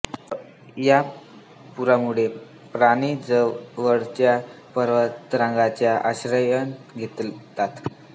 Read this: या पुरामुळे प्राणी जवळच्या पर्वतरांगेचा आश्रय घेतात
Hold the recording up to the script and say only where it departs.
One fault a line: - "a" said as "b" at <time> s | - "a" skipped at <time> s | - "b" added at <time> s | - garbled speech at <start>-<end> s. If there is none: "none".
none